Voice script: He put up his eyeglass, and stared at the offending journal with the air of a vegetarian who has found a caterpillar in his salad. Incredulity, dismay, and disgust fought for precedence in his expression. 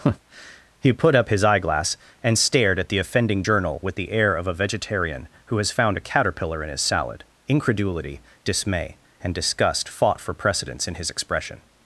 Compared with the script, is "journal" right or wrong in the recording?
right